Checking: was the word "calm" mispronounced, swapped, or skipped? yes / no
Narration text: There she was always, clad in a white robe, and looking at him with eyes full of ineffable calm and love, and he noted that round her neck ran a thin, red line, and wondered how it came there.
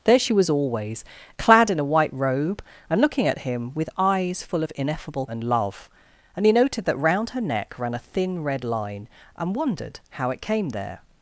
yes